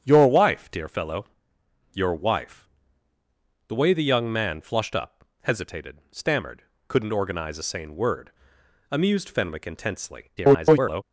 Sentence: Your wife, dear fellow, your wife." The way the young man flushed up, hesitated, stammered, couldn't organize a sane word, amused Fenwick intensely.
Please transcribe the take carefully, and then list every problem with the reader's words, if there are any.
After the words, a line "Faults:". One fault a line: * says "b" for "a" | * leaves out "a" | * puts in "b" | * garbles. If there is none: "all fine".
Your wife, dear fellow, your wife." The way the young man flushed up, hesitated, stammered, couldn't organize a sane word, amused Fenwick intensely. [garbled]
Faults:
* garbles